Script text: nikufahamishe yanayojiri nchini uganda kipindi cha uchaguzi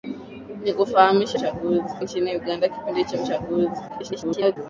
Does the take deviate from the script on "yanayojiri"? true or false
true